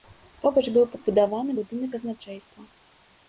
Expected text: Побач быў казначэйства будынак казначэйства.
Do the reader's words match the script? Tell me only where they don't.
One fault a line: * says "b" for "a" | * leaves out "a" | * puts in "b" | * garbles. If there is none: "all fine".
* says "пабудаваны" for "казначэйства"